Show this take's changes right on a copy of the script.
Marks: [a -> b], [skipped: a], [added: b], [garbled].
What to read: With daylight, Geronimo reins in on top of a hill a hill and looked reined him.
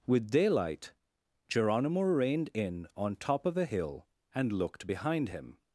With daylight, Geronimo [reins -> reined] in on top of a hill [skipped: a hill] and looked [reined -> behind] him.